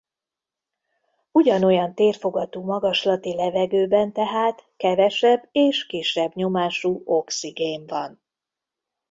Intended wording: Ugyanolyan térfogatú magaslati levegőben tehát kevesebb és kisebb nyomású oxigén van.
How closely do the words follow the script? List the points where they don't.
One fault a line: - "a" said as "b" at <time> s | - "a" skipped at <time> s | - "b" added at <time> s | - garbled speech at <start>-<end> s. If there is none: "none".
none